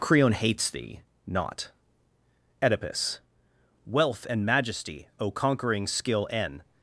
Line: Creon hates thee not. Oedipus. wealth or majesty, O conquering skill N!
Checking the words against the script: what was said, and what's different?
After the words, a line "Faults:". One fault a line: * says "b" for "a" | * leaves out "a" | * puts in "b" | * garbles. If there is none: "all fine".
Creon hates thee not. Oedipus. wealth and majesty, O conquering skill N!
Faults:
* says "and" for "or"